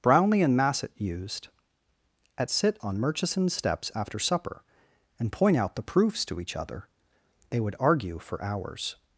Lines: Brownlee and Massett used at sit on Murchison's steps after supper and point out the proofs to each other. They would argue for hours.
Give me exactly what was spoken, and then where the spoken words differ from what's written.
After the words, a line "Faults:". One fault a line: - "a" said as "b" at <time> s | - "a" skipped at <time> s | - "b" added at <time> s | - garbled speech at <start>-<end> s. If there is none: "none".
Brownlee and Massett used at sit on Murchison's steps after supper and point out the proofs to each other. They would argue for hours.
Faults:
none